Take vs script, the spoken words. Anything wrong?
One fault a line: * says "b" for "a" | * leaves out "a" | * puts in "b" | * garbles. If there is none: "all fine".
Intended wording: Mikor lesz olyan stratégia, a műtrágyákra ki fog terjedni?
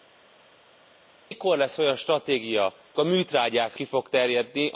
all fine